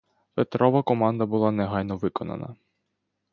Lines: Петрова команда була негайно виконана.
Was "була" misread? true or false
false